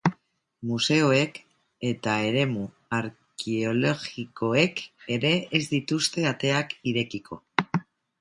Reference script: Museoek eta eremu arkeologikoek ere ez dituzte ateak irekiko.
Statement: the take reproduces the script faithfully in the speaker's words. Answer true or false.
true